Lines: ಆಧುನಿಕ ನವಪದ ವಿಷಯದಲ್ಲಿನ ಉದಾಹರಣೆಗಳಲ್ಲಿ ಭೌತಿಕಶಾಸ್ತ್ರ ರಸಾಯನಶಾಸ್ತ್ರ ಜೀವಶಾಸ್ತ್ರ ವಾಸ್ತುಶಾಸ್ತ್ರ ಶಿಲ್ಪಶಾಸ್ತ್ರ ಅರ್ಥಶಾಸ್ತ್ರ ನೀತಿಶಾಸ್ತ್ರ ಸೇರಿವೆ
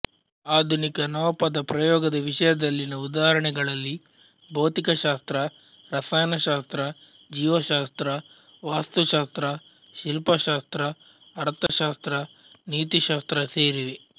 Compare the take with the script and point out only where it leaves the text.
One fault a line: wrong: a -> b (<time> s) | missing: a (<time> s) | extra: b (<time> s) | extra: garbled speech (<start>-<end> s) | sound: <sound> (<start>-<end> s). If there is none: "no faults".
extra: ಪ್ರಯೋಗದ (1.6 s)
sound: dropout (11.7-11.7 s)